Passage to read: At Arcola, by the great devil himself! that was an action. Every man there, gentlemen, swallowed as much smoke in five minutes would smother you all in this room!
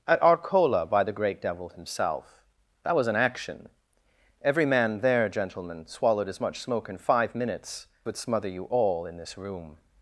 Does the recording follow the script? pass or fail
pass